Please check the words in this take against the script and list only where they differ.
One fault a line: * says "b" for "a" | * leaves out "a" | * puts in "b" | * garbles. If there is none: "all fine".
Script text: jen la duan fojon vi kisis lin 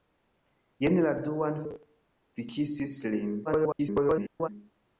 * leaves out "fojon"
* garbles